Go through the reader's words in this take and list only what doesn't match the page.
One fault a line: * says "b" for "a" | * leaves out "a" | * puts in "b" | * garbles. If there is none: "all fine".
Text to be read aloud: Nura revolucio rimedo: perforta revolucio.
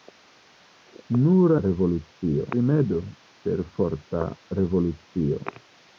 all fine